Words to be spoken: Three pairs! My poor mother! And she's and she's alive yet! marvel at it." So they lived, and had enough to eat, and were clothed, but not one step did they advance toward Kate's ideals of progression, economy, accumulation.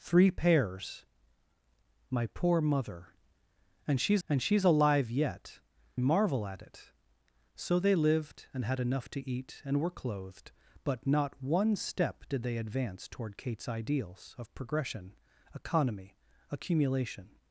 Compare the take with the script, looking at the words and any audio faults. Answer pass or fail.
pass